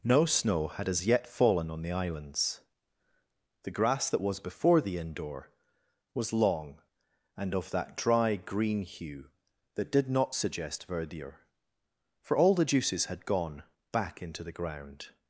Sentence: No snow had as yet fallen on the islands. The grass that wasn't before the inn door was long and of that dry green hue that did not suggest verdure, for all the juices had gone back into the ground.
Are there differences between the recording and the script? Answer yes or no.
yes